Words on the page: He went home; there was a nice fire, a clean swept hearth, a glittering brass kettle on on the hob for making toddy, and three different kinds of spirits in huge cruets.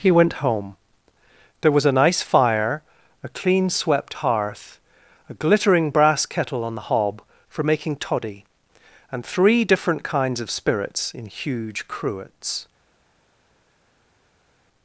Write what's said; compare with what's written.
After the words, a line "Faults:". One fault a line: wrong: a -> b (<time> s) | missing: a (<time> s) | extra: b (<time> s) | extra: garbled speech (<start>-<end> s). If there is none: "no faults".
He went home; there was a nice fire, a clean swept hearth, a glittering brass kettle on the hob for making toddy, and three different kinds of spirits in huge cruets.
Faults:
missing: on (6.8 s)